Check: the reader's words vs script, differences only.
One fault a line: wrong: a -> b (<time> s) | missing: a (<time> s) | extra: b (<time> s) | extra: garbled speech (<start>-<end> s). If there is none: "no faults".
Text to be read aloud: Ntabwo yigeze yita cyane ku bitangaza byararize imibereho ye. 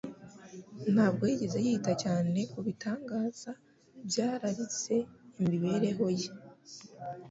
no faults